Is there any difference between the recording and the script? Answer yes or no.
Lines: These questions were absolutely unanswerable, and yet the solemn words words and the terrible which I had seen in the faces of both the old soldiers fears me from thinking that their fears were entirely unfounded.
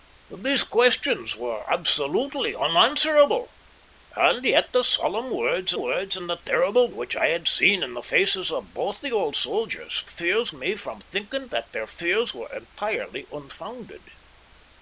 no